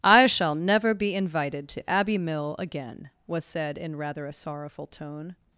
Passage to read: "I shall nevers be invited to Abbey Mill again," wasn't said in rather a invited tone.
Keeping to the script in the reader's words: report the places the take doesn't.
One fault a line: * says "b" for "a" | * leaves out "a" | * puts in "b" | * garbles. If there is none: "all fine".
* says "never" for "nevers"
* says "was" for "wasn't"
* says "sorrowful" for "invited"